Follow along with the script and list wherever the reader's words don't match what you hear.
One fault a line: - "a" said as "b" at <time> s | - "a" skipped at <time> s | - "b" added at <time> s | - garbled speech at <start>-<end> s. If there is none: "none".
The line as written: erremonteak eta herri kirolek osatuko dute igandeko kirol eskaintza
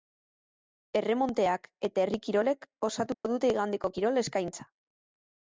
none